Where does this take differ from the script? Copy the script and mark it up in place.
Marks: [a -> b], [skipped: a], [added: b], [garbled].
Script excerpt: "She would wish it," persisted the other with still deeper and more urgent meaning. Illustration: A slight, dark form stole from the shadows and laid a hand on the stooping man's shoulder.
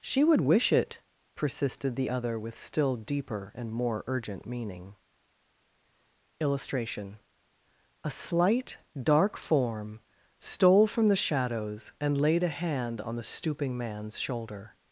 "She would wish it," persisted the other with still deeper and more urgent meaning. Illustration: A slight, dark form stole from the shadows and laid a hand on the stooping man's shoulder.